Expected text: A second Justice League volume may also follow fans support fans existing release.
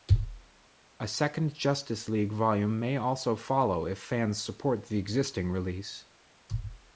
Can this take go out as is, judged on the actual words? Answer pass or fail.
fail